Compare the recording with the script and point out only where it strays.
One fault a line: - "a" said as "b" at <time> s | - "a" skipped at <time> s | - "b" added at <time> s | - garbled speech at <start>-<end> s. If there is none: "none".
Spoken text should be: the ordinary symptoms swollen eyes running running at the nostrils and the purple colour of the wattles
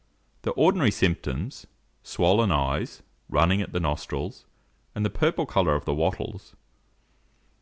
- "running" skipped at 3.6 s